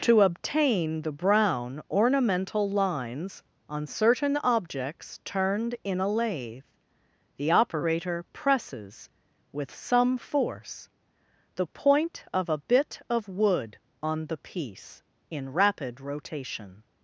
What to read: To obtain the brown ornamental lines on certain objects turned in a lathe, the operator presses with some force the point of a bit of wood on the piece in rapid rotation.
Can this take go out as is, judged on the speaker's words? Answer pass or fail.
pass